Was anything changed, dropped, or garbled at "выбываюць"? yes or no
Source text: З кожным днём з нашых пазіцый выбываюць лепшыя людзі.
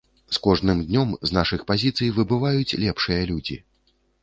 no